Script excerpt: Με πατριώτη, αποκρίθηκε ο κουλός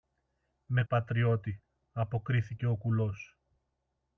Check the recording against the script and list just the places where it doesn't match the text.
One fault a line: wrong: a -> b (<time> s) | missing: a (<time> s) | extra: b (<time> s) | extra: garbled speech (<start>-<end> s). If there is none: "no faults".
no faults